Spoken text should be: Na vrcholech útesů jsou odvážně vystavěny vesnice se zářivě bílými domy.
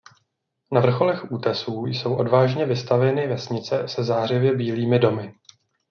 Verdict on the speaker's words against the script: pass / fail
pass